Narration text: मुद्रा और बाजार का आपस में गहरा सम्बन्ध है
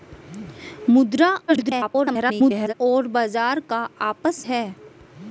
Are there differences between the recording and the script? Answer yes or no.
yes